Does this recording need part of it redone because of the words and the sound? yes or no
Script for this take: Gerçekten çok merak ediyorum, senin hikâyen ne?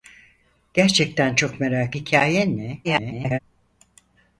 yes